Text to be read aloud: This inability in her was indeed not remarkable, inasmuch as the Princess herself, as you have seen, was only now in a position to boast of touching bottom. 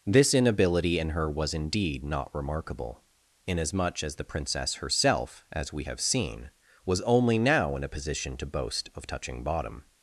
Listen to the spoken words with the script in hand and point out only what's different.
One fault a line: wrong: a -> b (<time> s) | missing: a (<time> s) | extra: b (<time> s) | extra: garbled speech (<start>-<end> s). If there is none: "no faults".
wrong: you -> we (5.7 s)